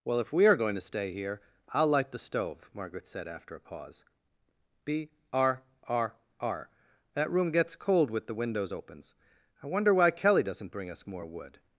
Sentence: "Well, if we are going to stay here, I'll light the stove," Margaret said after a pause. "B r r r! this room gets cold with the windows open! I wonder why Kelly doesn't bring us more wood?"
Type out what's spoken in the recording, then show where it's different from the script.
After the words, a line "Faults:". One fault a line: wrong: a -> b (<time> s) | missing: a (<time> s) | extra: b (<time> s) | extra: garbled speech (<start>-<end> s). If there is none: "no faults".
"Well, if we are going to stay here, I'll light the stove," Margaret said after a pause. "B r r r! that room gets cold with the windows opens! I wonder why Kelly doesn't bring us more wood?"
Faults:
wrong: this -> that (7.1 s)
wrong: open -> opens (8.7 s)